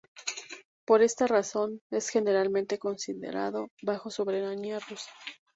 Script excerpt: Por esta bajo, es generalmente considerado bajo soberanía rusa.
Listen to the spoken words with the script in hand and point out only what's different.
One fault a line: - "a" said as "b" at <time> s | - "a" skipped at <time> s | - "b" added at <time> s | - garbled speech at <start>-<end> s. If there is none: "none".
- "bajo" said as "razón" at 1.3 s